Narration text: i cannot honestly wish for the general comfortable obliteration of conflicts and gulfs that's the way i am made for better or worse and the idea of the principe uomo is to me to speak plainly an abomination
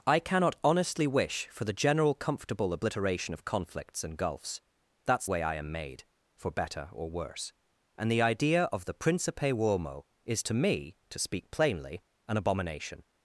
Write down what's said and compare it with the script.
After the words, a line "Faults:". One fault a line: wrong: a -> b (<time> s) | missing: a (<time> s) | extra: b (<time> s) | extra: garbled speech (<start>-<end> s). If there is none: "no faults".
i cannot honestly wish for the general comfortable obliteration of conflicts and gulfs that's way i am made for better or worse and the idea of the principe uomo is to me to speak plainly an abomination
Faults:
missing: the (5.3 s)